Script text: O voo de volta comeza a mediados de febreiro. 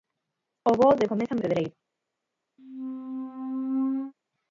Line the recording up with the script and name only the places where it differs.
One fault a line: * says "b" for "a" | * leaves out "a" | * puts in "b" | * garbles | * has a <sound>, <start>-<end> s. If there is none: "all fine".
* leaves out "volta"
* leaves out "mediados de"
* has a squeak, 2.6-4.1 s